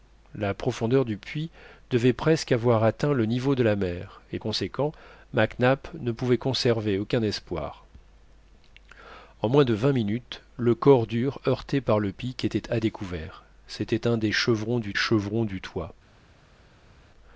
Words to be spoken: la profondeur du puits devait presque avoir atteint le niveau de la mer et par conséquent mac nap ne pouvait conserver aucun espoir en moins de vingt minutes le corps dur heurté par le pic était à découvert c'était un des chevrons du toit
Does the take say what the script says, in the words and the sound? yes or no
no